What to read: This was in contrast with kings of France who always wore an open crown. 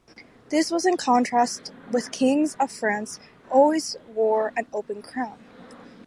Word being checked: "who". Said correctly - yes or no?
no